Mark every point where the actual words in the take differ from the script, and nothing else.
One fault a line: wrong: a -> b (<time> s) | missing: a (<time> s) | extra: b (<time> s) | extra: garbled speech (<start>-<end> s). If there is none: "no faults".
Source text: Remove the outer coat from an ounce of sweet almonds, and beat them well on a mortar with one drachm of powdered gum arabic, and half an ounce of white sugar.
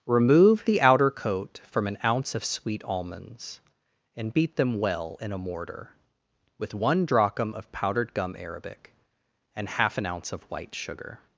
wrong: on -> in (5.2 s)